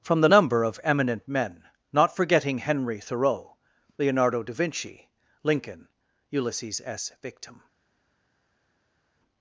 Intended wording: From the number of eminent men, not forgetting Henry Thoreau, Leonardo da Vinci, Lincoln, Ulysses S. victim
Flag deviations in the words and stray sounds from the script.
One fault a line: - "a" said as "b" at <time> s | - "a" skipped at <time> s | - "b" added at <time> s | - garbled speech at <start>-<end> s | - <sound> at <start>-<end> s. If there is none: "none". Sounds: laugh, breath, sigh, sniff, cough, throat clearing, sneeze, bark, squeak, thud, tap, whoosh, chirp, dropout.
none